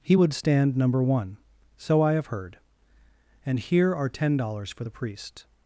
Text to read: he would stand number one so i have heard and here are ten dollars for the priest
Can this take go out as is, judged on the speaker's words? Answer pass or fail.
pass